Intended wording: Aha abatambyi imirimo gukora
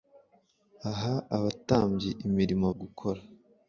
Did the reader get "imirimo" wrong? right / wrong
right